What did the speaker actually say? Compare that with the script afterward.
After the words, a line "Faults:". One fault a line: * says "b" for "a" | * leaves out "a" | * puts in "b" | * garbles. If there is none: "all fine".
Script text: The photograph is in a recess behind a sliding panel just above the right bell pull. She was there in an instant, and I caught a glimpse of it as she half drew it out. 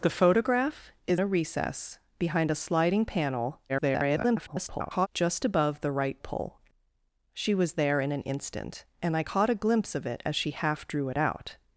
The photograph is a recess behind a sliding panel [garbled] just above the right pull. She was there in an instant, and I caught a glimpse of it as she half drew it out.
Faults:
* leaves out "in"
* garbles
* leaves out "bell"